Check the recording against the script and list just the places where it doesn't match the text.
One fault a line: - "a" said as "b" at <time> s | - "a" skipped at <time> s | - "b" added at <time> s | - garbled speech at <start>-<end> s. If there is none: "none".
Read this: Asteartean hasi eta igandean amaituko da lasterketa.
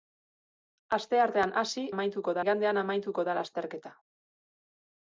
- "eta" said as "amaituko" at 1.9 s